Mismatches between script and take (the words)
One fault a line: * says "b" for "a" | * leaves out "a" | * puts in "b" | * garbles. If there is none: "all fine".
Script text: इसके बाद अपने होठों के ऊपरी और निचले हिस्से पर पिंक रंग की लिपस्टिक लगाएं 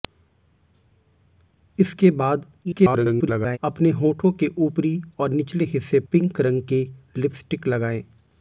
* garbles
* leaves out "पर"